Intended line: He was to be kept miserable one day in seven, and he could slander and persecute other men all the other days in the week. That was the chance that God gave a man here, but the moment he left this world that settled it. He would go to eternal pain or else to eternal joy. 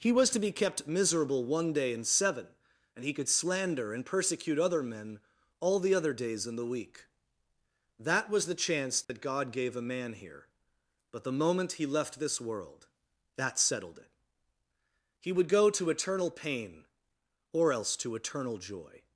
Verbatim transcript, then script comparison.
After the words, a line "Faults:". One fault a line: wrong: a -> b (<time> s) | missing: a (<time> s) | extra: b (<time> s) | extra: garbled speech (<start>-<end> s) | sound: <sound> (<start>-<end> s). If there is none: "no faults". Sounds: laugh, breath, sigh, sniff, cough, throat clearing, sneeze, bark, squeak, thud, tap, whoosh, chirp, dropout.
He was to be kept miserable one day in seven, and he could slander and persecute other men all the other days in the week. That was the chance that God gave a man here, but the moment he left this world that settled it. He would go to eternal pain or else to eternal joy.
Faults:
sound: dropout (9.0-9.1 s)